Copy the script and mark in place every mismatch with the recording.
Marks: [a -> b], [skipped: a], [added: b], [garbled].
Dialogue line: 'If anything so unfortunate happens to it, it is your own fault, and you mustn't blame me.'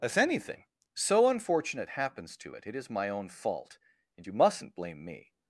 'If anything so unfortunate happens to it, it is [your -> my] own fault, and you mustn't blame me.'